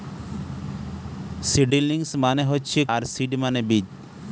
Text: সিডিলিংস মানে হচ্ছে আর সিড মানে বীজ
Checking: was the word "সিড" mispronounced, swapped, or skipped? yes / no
no